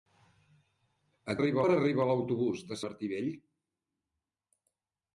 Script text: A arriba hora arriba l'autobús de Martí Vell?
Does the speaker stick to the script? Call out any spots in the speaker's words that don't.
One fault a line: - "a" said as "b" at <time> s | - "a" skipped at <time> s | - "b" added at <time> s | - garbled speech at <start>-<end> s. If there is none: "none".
none